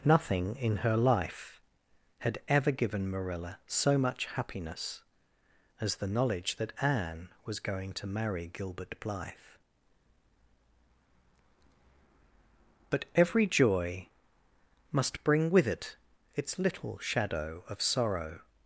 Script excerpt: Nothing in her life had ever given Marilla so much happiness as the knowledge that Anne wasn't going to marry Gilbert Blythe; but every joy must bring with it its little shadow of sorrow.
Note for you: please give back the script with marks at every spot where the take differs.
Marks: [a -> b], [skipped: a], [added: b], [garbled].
Nothing in her life had ever given Marilla so much happiness as the knowledge that Anne [wasn't -> was] going to marry Gilbert Blythe; but every joy must bring with it its little shadow of sorrow.